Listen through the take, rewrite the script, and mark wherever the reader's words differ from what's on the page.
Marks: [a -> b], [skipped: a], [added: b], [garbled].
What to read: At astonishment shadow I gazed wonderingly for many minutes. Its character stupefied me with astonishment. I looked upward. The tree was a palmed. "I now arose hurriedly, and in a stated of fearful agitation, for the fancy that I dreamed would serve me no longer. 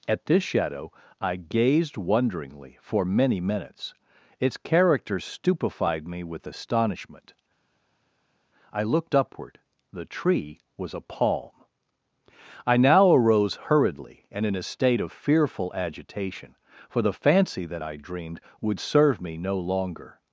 At [astonishment -> this] shadow I gazed wonderingly for many minutes. Its character stupefied me with astonishment. I looked upward. The tree was a [palmed. -> palm] "I now arose hurriedly, and in a [stated -> state] of fearful agitation, for the fancy that I dreamed would serve me no longer.